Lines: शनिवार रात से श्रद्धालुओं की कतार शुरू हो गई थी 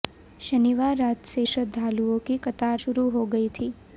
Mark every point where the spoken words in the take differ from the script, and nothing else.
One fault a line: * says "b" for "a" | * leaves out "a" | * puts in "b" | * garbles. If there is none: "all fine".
all fine